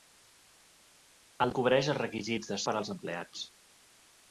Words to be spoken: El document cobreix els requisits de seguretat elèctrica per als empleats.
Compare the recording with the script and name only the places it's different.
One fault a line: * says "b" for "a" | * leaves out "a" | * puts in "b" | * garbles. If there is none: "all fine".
* leaves out "document"
* leaves out "seguretat elèctrica"